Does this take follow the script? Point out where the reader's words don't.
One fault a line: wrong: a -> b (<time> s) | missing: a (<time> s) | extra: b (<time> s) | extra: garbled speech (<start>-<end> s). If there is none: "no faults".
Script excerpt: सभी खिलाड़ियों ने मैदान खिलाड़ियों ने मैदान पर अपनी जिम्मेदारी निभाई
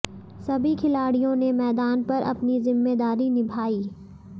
missing: खिलाड़ियों ने मैदान (2.0 s)